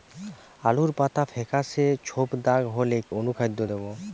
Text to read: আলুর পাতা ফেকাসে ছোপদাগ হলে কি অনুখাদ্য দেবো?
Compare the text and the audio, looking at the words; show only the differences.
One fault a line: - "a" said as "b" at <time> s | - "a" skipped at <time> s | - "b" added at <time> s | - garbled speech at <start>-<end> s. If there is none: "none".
- "কি" skipped at 3.0 s